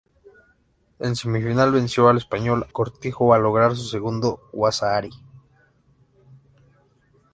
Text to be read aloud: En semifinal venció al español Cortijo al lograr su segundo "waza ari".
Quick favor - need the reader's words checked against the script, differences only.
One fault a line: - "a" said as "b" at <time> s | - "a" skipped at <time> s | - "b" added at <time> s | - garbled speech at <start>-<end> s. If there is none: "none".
none